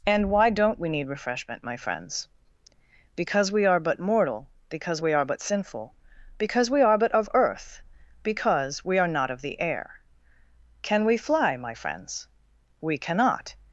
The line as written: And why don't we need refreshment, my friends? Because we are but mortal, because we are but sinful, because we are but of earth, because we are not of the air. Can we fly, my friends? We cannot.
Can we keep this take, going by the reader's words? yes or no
yes